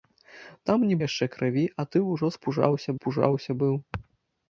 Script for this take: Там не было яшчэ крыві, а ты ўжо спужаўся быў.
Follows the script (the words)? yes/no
no